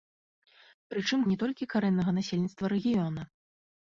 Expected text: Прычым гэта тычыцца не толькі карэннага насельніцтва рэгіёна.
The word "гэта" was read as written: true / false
false